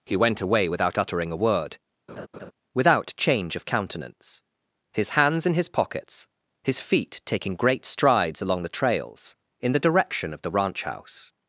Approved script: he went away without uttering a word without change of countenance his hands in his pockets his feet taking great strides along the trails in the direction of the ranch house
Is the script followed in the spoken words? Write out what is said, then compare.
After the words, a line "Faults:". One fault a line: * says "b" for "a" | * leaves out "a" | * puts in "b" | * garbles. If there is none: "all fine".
he went away without uttering a word without change of countenance his hands in his pockets his feet taking great strides along the trails in the direction of the ranch house
Faults:
all fine